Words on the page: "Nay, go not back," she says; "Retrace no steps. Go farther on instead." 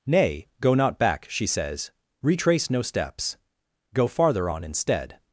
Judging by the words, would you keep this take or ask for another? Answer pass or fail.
pass